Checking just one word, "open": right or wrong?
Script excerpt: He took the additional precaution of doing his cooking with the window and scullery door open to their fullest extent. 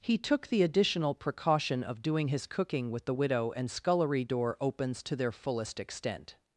wrong